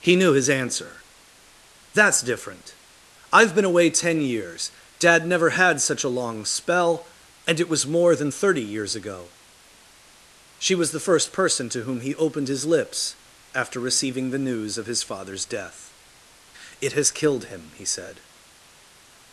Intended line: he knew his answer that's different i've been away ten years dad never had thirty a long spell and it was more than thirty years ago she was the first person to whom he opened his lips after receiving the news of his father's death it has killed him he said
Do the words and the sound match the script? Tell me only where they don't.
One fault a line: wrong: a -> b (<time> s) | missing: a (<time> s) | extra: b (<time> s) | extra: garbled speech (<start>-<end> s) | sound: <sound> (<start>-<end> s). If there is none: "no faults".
wrong: thirty -> such (5.8 s)